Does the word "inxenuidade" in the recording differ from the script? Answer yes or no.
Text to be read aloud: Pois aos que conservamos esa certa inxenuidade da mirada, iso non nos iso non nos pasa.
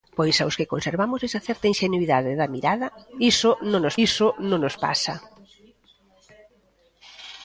no